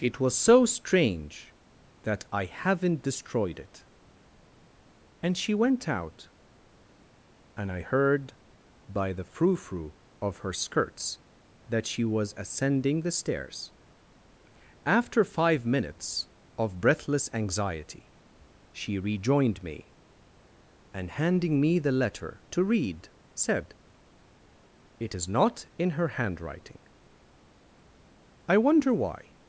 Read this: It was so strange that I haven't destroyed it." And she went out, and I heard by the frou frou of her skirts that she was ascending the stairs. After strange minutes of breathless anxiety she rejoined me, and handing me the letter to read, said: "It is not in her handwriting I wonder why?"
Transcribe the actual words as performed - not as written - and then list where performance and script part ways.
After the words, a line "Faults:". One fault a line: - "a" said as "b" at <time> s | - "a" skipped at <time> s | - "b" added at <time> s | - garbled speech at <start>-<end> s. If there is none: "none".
It was so strange that I haven't destroyed it." And she went out, and I heard by the frou frou of her skirts that she was ascending the stairs. After five minutes of breathless anxiety she rejoined me, and handing me the letter to read, said: "It is not in her handwriting I wonder why?"
Faults:
- "strange" said as "five" at 15.2 s